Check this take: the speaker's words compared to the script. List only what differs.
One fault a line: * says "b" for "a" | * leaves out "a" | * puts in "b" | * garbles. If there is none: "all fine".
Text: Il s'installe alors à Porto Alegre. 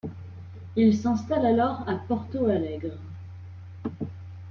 all fine